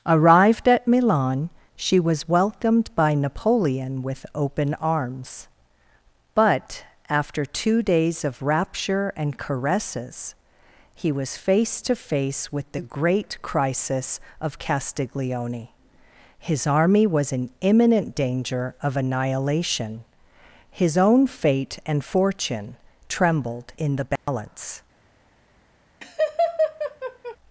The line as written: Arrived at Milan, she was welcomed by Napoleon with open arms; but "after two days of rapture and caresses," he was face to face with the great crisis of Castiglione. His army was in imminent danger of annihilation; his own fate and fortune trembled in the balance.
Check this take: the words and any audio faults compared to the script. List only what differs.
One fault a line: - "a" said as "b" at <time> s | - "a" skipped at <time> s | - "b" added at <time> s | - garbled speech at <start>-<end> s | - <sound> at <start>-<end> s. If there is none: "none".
- dropout at 24.2-24.3 s
- laugh at 26.0-27.4 s